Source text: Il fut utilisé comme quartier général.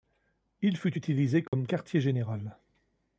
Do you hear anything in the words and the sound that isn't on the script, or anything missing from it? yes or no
yes